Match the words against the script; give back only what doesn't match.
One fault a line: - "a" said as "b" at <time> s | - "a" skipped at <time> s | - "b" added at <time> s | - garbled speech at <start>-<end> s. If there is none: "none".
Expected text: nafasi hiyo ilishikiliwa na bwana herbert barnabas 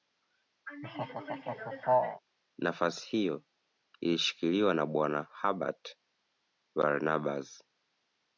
none